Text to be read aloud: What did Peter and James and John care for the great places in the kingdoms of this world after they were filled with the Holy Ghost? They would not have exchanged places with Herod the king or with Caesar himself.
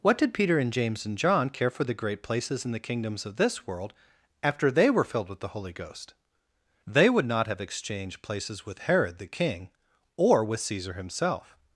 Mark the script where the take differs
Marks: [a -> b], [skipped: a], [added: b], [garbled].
What did Peter and James and John care for the great places in the kingdoms of this world after they were filled with the Holy Ghost? They would not have exchanged places with Herod the king or with Caesar himself.